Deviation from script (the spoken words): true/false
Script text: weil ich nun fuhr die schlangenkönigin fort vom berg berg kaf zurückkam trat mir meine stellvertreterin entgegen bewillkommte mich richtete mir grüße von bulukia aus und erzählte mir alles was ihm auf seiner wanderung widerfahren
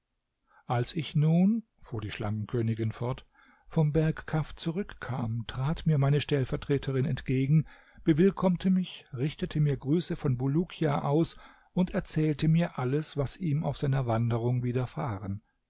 true